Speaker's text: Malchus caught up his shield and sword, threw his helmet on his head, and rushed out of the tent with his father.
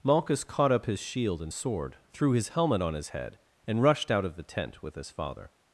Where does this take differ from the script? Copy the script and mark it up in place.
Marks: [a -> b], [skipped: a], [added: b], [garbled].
Malchus caught up his shield and sword, threw his helmet on his head, and rushed out of the tent with his father.